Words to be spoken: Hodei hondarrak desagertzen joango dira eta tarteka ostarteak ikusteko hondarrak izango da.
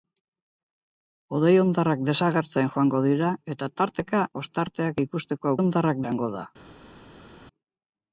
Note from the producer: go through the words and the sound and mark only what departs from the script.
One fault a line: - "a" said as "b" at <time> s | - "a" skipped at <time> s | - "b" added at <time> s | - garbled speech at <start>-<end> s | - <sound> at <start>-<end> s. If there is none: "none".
none